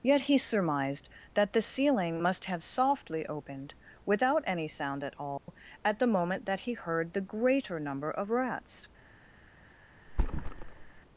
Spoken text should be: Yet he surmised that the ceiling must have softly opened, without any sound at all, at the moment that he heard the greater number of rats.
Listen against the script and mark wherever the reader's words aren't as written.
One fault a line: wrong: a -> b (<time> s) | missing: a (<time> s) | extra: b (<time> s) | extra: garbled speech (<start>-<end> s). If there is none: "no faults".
no faults